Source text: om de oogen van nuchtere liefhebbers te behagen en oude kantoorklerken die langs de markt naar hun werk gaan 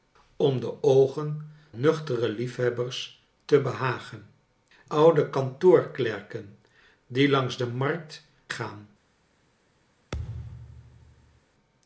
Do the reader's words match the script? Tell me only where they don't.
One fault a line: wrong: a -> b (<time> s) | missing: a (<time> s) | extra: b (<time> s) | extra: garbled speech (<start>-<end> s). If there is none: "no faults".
missing: van (1.5 s)
missing: en (4.3 s)
missing: naar hun werk (8.3 s)